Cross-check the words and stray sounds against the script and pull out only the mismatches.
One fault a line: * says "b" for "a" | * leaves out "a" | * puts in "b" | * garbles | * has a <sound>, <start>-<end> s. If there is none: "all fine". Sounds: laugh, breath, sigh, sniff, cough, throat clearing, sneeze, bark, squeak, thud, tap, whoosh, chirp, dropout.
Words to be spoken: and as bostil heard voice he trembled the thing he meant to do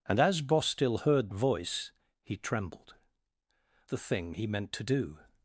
all fine